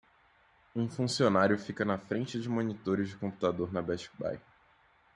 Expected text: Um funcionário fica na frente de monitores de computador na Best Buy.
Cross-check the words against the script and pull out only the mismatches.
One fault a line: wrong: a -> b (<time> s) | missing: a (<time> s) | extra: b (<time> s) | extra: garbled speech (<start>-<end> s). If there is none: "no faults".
no faults